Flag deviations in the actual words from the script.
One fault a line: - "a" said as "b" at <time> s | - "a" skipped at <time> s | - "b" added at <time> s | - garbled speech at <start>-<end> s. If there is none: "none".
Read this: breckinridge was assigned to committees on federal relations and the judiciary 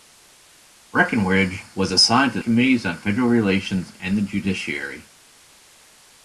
none